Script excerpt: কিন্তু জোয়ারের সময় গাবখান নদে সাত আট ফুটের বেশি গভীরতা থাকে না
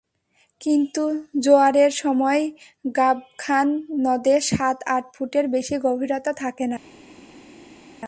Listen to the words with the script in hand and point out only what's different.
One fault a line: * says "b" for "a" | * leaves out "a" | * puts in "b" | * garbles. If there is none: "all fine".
all fine